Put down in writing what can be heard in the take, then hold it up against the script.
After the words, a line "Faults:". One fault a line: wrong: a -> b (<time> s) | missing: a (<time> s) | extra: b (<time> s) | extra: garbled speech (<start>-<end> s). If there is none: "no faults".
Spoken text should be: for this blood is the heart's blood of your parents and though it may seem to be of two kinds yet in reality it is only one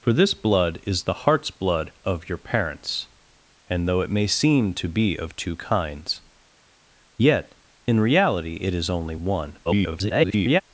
for this blood is the heart's blood of your parents and though it may seem to be of two kinds yet in reality it is only one [garbled]
Faults:
extra: garbled speech (9.6-10.6 s)